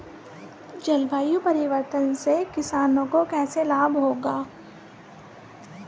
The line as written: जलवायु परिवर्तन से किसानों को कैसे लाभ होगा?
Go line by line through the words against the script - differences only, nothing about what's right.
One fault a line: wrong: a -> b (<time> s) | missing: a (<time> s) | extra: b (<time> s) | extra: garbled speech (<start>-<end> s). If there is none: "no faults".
no faults